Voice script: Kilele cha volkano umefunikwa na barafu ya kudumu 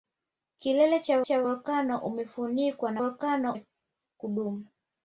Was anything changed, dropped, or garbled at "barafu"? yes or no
yes